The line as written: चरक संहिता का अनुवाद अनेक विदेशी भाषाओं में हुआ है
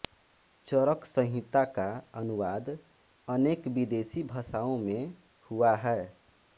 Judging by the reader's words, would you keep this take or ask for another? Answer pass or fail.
pass